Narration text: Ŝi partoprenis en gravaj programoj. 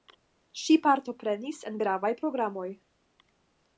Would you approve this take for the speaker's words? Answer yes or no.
yes